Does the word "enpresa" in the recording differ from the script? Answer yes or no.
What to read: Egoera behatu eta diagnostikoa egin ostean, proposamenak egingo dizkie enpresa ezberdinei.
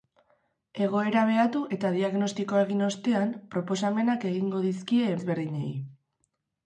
yes